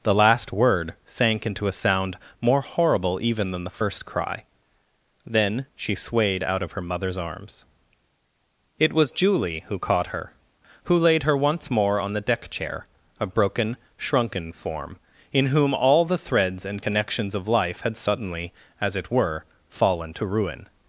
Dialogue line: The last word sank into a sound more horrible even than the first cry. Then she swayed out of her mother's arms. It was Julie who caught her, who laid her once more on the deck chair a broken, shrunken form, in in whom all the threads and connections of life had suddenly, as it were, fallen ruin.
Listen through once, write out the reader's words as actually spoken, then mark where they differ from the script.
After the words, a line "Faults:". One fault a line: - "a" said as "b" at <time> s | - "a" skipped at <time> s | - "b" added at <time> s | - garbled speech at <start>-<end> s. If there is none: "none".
The last word sank into a sound more horrible even than the first cry. Then she swayed out of her mother's arms. It was Julie who caught her, who laid her once more on the deck chair a broken, shrunken form, in whom all the threads and connections of life had suddenly, as it were, fallen to ruin.
Faults:
- "in" skipped at 15.5 s
- "to" added at 20.1 s